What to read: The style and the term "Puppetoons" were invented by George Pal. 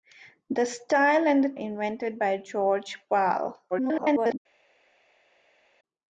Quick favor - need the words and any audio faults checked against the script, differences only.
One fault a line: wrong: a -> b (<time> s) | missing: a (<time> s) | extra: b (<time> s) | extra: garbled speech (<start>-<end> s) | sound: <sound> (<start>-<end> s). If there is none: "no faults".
missing: term Puppetoons were (1.5 s)
extra: garbled speech (3.7-4.4 s)